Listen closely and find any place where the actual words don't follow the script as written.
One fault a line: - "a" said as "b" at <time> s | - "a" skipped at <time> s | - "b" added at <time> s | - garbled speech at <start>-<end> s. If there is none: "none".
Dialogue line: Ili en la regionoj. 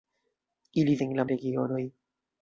none